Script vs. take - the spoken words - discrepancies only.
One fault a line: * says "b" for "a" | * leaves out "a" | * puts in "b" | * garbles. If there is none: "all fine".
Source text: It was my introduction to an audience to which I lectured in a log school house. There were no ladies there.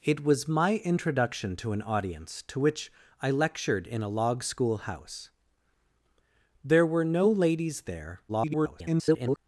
* garbles